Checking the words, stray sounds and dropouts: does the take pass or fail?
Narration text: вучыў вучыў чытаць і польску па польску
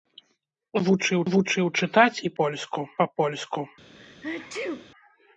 fail